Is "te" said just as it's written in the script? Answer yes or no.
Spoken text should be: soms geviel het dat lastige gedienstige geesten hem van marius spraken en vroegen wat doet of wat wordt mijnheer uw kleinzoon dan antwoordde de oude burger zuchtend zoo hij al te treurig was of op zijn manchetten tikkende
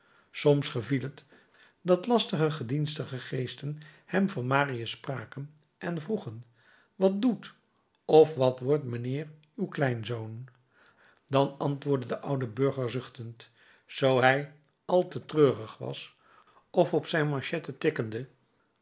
yes